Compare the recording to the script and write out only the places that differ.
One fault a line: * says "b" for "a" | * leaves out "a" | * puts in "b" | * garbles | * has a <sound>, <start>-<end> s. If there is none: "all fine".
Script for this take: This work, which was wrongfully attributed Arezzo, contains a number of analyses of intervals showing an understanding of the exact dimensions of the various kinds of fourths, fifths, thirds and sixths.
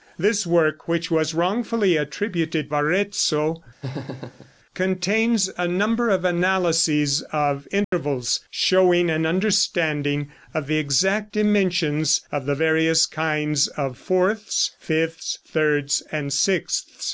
* has a laugh, 3.8-4.5 s
* has a dropout, 7.8-7.9 s